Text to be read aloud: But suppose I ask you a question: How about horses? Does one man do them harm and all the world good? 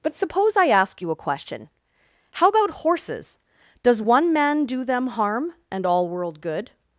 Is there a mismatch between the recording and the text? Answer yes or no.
yes